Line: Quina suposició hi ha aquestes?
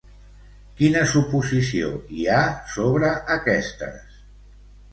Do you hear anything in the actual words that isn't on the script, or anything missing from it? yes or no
yes